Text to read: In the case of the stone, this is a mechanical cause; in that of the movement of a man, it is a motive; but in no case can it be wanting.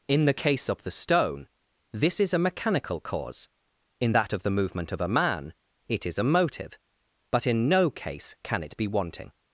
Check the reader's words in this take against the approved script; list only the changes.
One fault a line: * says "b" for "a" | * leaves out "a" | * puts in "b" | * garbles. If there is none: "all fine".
all fine